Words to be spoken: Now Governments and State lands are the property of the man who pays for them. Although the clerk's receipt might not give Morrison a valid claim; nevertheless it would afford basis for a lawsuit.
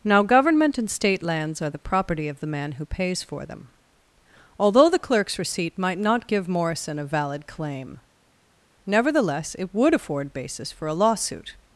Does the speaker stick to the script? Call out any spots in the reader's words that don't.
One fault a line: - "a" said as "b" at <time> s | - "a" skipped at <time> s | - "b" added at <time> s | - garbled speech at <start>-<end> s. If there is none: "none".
- "Governments" said as "Government" at 0.2 s